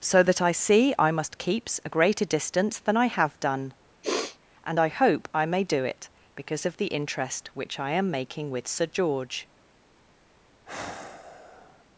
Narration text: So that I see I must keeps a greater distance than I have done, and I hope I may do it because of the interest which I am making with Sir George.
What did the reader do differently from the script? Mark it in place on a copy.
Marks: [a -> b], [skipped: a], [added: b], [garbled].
So that I see I must keeps a greater distance than I have done, and I hope I may do it because of the interest which I am making with Sir George.